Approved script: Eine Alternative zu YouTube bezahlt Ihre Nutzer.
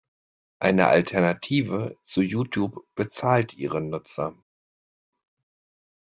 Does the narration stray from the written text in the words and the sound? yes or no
no